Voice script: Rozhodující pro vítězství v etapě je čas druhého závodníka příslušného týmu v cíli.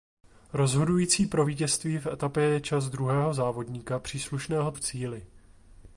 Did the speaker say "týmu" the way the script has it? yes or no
no